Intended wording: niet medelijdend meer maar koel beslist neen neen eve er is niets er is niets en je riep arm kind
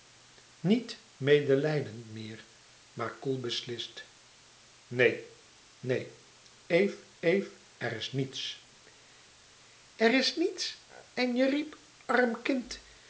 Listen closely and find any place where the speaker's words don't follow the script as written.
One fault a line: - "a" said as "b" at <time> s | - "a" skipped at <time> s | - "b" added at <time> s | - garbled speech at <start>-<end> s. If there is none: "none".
- "eve" added at 7.2 s